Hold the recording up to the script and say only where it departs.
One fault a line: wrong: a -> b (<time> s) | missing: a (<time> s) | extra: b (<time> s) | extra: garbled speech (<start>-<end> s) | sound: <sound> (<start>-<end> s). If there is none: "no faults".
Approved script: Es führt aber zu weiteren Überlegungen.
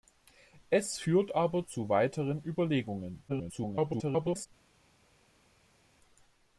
extra: garbled speech (3.3-4.5 s)